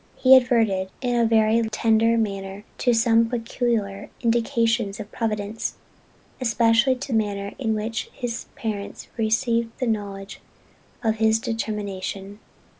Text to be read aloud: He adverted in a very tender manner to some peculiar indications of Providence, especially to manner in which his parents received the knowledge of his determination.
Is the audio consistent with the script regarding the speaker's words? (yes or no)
yes